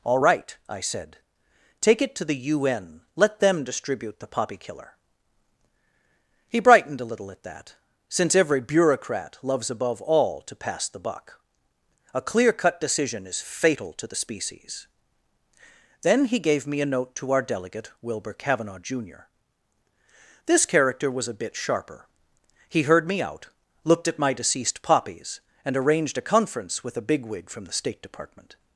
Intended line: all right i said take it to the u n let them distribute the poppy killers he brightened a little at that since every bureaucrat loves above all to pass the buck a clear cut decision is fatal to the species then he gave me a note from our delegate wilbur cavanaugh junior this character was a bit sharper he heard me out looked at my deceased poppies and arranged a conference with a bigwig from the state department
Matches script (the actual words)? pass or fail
fail